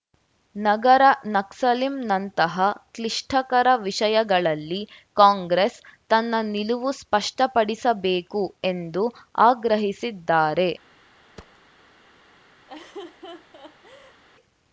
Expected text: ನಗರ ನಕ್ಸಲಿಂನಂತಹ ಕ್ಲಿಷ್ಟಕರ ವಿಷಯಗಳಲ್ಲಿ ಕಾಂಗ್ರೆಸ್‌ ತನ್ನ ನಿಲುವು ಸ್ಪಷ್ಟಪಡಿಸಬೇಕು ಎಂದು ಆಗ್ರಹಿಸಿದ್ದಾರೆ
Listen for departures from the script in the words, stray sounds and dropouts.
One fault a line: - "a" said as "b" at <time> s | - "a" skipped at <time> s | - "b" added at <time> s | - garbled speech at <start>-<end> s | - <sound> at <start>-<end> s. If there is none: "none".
- thud at 11.4-11.6 s
- laugh at 12.7-14.2 s